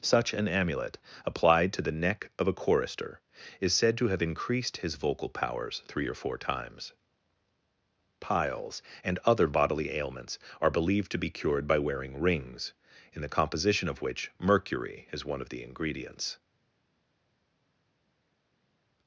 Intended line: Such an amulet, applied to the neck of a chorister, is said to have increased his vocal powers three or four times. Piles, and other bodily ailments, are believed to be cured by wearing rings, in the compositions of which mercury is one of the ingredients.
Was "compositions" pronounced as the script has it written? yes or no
no